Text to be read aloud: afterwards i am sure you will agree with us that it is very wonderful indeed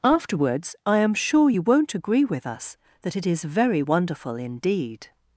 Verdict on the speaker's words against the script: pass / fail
fail